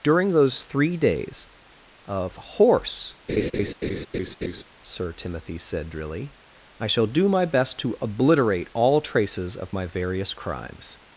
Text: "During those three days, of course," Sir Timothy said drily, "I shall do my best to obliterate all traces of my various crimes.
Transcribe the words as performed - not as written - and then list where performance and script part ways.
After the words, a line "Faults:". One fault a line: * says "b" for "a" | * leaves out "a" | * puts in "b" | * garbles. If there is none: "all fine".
"During those three days, of horse," Sir Timothy said drily, "I shall do my best to obliterate all traces of my various crimes.
Faults:
* says "horse" for "course"